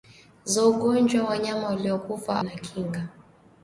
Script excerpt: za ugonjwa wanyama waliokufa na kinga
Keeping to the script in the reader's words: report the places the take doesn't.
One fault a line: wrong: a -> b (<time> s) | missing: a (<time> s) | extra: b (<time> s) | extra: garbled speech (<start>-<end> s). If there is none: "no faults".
no faults